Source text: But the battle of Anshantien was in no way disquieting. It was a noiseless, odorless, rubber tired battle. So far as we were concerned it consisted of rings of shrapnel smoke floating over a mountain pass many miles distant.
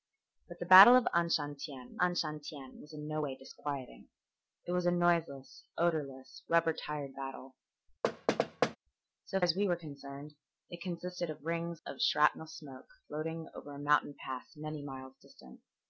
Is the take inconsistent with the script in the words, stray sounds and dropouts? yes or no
yes